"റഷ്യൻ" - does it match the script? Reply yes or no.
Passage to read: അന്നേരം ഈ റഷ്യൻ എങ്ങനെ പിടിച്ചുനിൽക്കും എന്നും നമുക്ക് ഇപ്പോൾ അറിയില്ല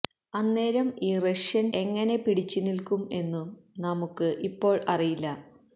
yes